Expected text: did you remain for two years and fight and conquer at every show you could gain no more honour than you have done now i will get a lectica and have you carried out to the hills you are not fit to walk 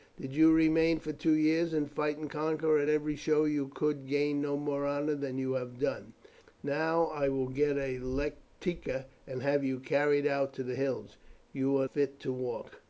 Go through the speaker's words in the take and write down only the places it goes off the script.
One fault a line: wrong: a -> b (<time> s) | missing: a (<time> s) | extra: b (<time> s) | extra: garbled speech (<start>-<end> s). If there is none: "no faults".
missing: not (11.9 s)